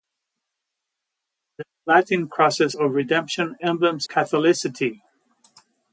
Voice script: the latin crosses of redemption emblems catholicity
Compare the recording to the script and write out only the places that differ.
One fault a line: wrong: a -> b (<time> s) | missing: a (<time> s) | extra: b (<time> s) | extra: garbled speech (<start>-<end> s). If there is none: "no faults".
no faults